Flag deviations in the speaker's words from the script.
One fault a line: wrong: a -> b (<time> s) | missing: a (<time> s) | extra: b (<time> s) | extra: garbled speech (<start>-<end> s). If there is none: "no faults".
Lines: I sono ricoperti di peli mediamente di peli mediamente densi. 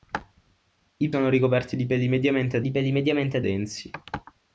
no faults